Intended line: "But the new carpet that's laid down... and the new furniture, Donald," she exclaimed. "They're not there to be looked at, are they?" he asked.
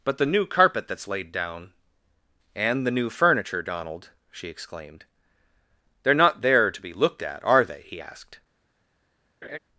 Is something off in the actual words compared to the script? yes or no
no